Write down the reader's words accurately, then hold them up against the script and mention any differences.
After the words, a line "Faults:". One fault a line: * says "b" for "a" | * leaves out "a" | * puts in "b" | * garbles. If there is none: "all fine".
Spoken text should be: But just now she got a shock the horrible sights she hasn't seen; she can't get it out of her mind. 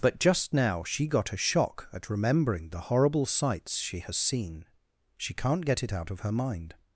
But just now she got a shock at remembering the horrible sights she has seen; she can't get it out of her mind.
Faults:
* puts in "at remembering"
* says "has" for "hasn't"